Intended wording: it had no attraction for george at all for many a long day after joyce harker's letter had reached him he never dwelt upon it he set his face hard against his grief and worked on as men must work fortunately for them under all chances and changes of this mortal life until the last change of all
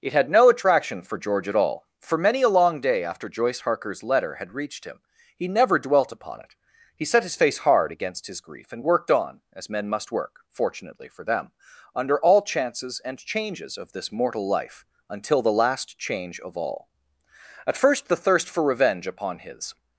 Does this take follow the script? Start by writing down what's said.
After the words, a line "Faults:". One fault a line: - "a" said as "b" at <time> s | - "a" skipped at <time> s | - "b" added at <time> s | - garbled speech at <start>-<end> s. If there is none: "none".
it had no attraction for george at all for many a long day after joyce harker's letter had reached him he never dwelt upon it he set his face hard against his grief and worked on as men must work fortunately for them under all chances and changes of this mortal life until the last change of all at first the thirst for revenge upon his
Faults:
- "at first the thirst for revenge upon his" added at 17.7 s